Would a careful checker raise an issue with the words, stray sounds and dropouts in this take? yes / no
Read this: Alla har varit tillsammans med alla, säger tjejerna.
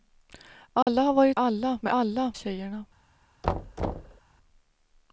yes